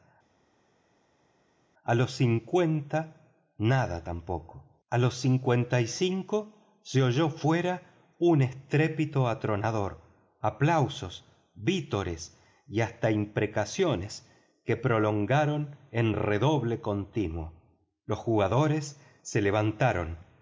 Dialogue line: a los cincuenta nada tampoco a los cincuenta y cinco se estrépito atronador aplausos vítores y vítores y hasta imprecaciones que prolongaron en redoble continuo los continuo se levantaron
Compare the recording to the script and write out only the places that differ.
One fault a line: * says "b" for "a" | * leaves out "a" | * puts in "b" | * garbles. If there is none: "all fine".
* puts in "oyó fuera un"
* leaves out "vítores y"
* says "jugadores" for "continuo"